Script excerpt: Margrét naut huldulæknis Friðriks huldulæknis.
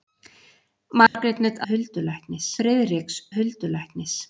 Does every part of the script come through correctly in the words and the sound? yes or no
no